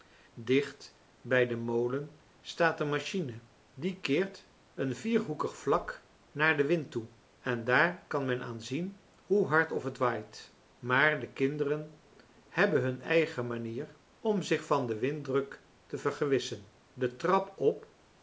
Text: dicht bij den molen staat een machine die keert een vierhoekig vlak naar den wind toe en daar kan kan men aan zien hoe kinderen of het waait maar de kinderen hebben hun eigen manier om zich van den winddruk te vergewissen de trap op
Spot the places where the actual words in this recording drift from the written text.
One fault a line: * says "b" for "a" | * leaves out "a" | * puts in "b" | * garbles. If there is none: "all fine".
* leaves out "kan"
* says "hard" for "kinderen"